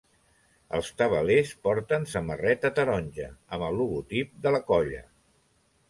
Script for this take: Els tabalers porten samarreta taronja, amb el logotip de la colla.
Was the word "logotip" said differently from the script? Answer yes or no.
no